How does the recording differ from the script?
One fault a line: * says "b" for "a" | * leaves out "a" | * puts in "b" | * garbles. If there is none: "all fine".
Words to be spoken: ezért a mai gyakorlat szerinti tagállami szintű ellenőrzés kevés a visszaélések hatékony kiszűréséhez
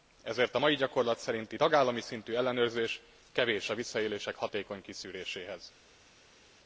all fine